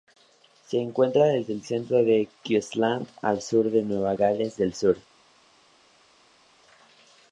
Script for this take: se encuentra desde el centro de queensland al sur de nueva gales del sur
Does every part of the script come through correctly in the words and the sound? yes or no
yes